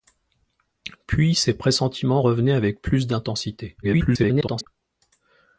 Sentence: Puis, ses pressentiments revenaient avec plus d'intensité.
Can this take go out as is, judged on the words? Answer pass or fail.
fail